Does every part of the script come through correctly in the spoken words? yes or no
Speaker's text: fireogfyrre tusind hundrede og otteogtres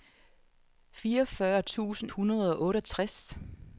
yes